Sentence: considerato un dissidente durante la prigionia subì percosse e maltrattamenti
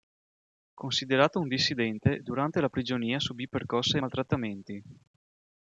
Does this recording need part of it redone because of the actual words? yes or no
no